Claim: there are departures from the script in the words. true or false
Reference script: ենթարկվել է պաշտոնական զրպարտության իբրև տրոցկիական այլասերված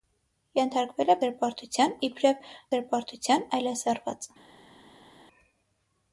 true